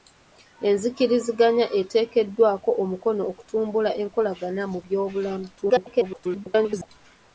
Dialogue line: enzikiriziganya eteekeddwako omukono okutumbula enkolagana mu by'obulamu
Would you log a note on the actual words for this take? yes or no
yes